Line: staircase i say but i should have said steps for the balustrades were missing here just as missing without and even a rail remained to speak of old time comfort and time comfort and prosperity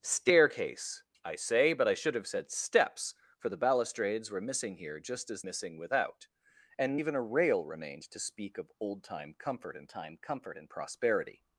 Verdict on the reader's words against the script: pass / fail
pass